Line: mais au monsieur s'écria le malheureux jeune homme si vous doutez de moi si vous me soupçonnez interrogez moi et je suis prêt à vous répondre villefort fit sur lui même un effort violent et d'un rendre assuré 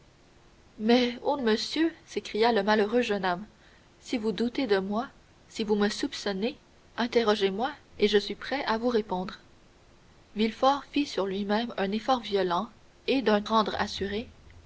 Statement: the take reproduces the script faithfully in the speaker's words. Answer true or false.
true